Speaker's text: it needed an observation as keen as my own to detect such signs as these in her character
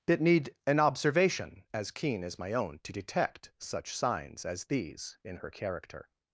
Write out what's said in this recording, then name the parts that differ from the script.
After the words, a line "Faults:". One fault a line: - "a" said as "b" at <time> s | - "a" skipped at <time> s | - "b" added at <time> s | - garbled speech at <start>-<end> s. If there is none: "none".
it need an observation as keen as my own to detect such signs as these in her character
Faults:
- "needed" said as "need" at 0.2 s